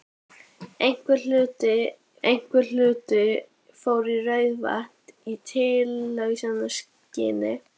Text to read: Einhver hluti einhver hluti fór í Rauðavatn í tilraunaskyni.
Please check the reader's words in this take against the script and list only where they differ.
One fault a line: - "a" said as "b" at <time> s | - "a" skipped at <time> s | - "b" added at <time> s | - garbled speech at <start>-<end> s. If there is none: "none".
none